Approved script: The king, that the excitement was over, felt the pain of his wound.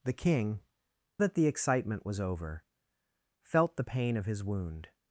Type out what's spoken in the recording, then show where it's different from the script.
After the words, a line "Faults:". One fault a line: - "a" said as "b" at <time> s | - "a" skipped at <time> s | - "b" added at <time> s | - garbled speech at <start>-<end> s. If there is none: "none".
The king, that the excitement was over, felt the pain of his wound.
Faults:
none